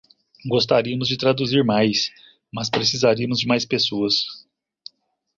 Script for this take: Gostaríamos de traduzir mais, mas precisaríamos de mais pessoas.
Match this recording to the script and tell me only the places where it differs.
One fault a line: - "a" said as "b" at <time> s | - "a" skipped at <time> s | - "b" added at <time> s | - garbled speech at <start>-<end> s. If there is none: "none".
none